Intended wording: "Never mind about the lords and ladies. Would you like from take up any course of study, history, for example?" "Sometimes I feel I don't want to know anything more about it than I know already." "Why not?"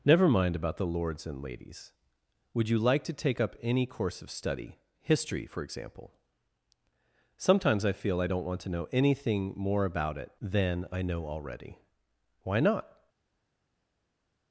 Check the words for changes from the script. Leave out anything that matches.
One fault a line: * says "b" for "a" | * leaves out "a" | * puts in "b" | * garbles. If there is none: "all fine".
* says "to" for "from"